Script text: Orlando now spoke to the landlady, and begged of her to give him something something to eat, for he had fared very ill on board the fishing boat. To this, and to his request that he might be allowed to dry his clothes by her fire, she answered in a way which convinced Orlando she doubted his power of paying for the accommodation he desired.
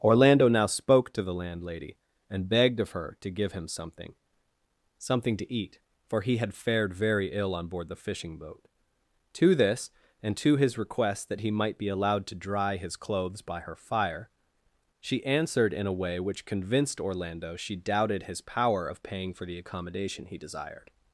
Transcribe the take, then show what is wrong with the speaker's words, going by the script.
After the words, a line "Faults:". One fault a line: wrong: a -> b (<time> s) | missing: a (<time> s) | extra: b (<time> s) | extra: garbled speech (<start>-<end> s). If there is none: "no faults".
Orlando now spoke to the landlady, and begged of her to give him something something to eat, for he had fared very ill on board the fishing boat. To this, and to his request that he might be allowed to dry his clothes by her fire, she answered in a way which convinced Orlando she doubted his power of paying for the accommodation he desired.
Faults:
no faults